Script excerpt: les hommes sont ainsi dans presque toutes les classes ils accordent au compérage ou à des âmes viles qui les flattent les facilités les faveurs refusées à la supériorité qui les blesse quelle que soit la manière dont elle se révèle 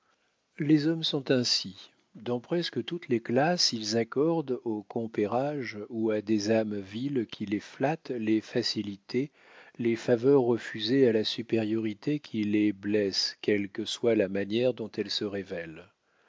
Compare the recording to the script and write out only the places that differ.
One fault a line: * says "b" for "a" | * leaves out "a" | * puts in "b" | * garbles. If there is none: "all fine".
all fine